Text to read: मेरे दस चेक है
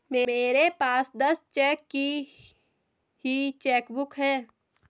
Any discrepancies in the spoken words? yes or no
yes